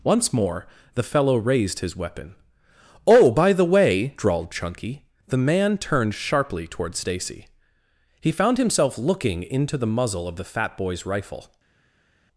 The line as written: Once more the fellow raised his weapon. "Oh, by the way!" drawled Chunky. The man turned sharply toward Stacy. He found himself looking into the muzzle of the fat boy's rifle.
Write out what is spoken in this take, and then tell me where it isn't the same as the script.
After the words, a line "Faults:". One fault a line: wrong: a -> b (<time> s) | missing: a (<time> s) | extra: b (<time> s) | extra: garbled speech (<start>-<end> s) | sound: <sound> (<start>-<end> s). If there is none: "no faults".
Once more the fellow raised his weapon. "Oh, by the way!" drawled Chunky. The man turned sharply toward Stacy. He found himself looking into the muzzle of the fat boy's rifle.
Faults:
no faults